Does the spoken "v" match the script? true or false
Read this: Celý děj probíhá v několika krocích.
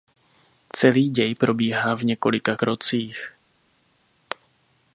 true